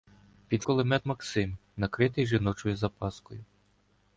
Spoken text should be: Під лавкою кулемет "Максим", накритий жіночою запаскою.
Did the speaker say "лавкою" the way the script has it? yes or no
no